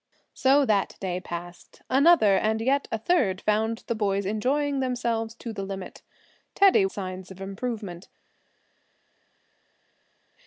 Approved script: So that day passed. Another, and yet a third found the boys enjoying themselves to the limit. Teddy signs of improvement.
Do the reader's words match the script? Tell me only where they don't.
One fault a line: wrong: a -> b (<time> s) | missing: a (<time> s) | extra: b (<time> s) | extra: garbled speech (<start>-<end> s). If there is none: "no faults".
no faults